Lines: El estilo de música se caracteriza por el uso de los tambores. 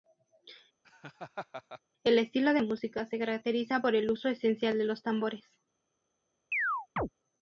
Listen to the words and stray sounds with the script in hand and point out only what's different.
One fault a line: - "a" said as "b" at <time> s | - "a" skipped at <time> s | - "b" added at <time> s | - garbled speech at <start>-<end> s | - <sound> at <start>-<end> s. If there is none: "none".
- laugh at 0.8-1.8 s
- "esencial" added at 4.3 s
- chirp at 6.5-7.1 s